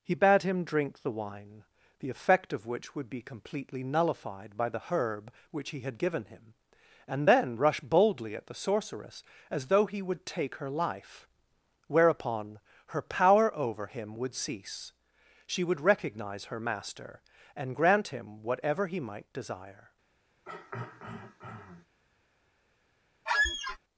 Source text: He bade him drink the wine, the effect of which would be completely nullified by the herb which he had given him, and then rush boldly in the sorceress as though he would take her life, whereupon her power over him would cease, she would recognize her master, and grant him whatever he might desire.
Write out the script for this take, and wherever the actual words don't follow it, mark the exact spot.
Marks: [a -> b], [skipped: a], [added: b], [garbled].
He bade him drink the wine, the effect of which would be completely nullified by the herb which he had given him, and then rush boldly [in -> at] the sorceress as though he would take her life, whereupon her power over him would cease, she would recognize her master, and grant him whatever he might desire.